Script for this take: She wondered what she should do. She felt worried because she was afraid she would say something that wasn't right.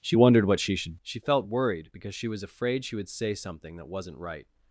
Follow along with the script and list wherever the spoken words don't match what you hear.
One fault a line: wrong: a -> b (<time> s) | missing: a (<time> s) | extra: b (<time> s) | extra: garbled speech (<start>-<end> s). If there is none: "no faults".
missing: do (1.0 s)